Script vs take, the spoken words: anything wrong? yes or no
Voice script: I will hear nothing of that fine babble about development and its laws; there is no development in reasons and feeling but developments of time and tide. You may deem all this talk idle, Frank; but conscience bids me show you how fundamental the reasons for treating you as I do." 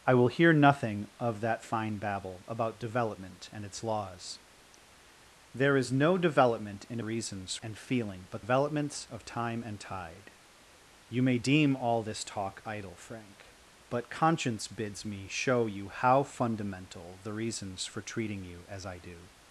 no